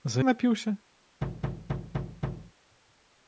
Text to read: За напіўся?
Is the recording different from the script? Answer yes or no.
no